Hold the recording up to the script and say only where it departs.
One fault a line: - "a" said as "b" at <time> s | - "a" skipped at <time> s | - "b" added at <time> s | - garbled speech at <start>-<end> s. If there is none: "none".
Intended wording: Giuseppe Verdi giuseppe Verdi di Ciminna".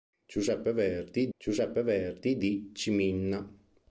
none